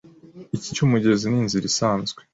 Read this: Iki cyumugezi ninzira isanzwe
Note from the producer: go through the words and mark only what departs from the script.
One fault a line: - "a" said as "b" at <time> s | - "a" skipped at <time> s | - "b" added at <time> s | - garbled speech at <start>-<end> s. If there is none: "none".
none